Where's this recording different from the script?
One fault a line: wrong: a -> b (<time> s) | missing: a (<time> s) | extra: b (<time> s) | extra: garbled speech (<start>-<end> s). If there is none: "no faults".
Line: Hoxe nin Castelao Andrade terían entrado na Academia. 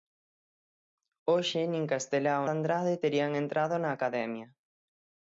no faults